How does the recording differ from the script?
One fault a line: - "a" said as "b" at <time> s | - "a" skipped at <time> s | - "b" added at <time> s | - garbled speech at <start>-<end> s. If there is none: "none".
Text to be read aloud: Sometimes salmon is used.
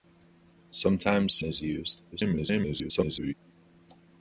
- "salmon" skipped at 1.4 s
- garbled speech at 2.1-3.3 s